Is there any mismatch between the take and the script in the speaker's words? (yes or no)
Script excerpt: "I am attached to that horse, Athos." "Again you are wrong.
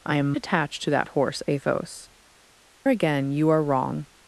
no